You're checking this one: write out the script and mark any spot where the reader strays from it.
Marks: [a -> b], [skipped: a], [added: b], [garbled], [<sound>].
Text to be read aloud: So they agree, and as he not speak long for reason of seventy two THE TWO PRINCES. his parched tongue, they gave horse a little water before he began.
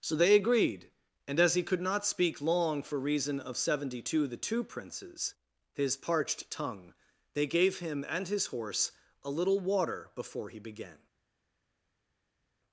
So they [agree, -> agreed] and as he [added: could] not speak long for reason of seventy two THE TWO PRINCES. his parched tongue, they gave [added: him and his] horse a little water before he began.